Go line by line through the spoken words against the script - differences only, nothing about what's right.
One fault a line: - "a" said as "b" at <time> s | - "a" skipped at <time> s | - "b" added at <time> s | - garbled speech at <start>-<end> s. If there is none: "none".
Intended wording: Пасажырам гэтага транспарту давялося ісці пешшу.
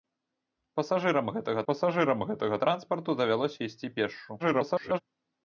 - "пасажырам гэтага" added at 1.7 s
- garbled speech at 4.4-5.0 s